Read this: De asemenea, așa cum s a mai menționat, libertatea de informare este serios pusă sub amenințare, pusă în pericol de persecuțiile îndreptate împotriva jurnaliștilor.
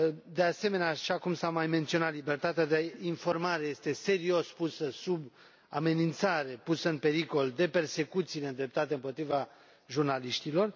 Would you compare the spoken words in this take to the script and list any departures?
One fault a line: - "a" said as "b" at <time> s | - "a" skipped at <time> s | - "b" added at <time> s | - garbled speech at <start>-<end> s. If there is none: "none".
none